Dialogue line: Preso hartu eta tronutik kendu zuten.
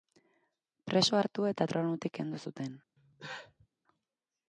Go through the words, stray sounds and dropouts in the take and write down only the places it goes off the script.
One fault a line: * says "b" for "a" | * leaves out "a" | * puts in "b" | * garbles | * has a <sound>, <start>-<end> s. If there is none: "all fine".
* has a cough, 3.0-3.7 s